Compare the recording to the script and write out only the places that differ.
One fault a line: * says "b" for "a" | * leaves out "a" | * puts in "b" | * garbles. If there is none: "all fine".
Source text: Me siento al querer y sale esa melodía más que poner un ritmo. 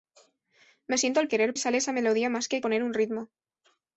all fine